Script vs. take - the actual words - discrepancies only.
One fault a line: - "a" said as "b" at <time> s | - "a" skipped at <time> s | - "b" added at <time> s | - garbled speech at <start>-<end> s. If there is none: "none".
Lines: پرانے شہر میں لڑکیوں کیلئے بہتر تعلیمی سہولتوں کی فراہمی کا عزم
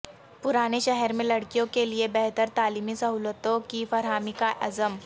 none